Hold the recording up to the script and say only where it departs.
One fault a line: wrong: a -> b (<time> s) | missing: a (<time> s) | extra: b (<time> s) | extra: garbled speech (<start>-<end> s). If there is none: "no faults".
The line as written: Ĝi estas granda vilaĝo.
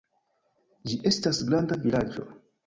no faults